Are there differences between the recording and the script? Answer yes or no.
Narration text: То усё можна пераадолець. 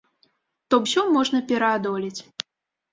no